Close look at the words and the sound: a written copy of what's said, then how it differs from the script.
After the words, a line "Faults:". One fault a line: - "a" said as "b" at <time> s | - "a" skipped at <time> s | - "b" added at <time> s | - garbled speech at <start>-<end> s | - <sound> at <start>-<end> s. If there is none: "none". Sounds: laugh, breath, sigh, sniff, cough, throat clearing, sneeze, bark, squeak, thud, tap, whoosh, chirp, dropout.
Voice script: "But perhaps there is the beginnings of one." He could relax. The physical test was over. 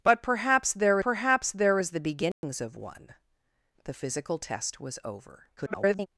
"But perhaps there perhaps there is the beginnings of one. The physical test was over. [garbled]
Faults:
- "perhaps there" added at 1.0 s
- dropout at 2.3-2.4 s
- "He could relax" skipped at 3.1 s
- garbled speech at 5.6-6.1 s